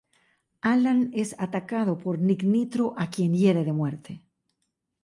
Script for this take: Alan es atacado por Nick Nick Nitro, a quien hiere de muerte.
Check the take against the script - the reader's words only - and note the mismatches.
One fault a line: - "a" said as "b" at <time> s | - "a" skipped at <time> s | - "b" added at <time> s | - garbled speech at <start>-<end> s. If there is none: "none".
- "Nick" skipped at 2.4 s